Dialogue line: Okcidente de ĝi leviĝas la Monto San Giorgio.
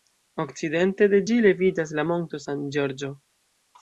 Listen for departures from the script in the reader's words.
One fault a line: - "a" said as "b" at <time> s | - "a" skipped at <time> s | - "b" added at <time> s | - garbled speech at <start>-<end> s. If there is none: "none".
none